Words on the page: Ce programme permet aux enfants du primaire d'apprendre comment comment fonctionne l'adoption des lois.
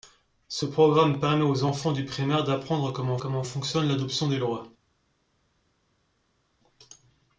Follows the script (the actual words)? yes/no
yes